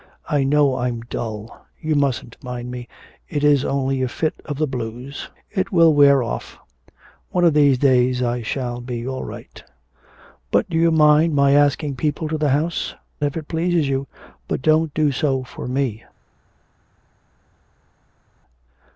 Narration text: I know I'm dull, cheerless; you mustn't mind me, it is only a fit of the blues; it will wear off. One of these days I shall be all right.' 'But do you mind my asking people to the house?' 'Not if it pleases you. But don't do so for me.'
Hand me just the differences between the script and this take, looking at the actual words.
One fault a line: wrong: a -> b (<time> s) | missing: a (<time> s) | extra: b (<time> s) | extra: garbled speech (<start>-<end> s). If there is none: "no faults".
missing: cheerless (1.7 s)
missing: Not (12.9 s)